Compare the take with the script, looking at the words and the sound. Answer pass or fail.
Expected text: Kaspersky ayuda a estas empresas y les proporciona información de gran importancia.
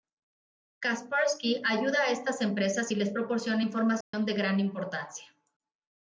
fail